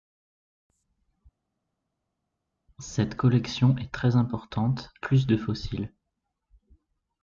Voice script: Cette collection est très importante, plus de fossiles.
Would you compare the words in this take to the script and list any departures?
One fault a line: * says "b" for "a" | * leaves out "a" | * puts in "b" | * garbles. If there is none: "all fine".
all fine